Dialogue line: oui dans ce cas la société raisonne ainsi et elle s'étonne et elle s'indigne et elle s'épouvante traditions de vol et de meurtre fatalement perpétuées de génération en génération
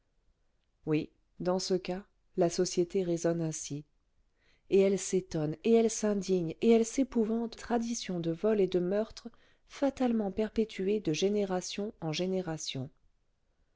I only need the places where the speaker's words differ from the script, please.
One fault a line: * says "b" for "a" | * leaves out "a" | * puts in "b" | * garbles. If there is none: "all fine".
all fine